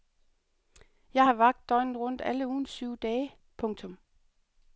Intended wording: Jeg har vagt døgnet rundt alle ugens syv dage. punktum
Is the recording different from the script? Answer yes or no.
no